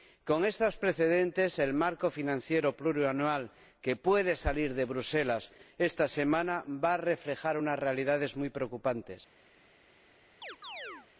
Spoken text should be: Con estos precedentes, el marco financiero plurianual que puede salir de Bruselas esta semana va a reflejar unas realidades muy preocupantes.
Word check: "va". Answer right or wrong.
right